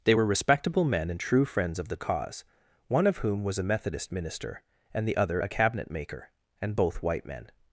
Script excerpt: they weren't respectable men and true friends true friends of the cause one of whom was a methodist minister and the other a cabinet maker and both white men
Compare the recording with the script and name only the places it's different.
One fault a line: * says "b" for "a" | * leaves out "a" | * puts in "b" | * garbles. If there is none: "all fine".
* says "were" for "weren't"
* leaves out "true friends"